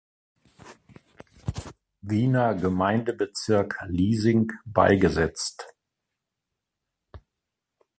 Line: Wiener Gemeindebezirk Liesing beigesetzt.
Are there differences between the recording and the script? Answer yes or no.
no